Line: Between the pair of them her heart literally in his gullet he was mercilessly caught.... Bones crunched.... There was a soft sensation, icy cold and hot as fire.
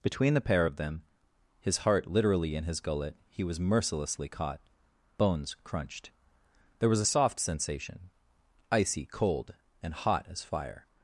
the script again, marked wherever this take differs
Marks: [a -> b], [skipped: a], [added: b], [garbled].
Between the pair of them [her -> his] heart literally in his gullet he was mercilessly caught.... Bones crunched.... There was a soft sensation, icy cold and hot as fire.